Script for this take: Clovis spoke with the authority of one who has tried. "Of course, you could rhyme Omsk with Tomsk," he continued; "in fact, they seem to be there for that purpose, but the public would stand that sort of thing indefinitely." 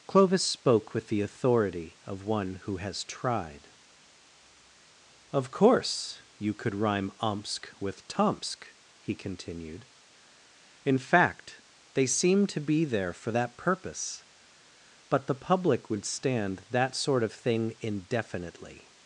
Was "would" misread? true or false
false